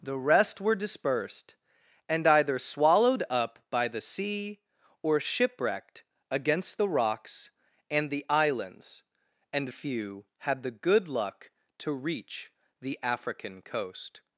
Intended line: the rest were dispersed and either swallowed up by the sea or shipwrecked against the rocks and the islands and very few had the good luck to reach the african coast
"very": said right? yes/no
no